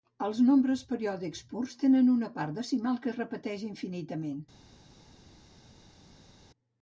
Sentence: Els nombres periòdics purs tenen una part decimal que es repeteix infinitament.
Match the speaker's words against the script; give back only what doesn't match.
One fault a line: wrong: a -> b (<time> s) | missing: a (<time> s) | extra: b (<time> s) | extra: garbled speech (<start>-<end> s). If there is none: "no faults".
no faults